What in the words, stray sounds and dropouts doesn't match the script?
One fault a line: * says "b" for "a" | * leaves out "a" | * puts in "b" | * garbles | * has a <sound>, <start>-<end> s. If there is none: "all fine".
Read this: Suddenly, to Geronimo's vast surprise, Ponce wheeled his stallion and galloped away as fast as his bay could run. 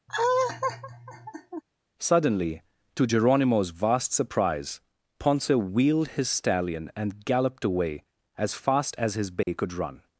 * has a laugh, 0.1-1.6 s
* has a dropout, 9.4-9.5 s